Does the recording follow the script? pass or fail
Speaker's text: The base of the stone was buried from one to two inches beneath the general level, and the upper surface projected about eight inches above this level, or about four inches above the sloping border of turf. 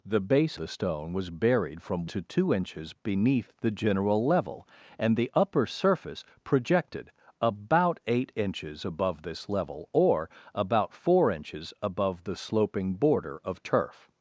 fail